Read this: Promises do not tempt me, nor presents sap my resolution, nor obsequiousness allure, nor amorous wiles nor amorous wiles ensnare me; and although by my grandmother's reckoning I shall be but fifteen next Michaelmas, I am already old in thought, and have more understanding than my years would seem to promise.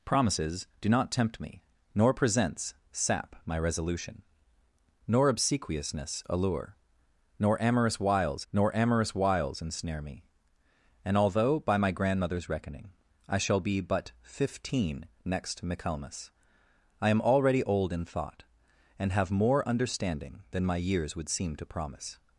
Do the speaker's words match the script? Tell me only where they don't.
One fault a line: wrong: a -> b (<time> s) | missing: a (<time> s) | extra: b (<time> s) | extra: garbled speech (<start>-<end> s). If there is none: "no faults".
no faults